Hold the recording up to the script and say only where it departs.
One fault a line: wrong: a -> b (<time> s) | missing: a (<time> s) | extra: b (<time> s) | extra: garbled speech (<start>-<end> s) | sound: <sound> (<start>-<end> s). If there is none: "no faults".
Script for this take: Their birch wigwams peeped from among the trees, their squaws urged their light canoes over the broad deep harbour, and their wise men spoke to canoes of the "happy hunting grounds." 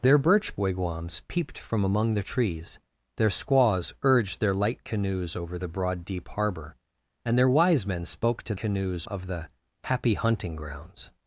no faults